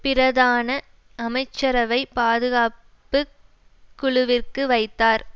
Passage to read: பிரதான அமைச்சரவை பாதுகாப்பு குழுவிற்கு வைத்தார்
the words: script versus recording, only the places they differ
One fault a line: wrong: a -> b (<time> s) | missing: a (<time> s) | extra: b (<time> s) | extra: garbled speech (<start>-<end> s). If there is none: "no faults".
no faults